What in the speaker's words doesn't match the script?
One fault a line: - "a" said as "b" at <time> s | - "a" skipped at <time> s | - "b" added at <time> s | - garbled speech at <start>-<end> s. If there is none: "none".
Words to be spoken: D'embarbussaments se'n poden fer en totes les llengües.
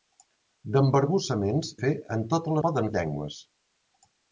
- "se'n poden" skipped at 1.7 s
- "les" said as "poden" at 2.7 s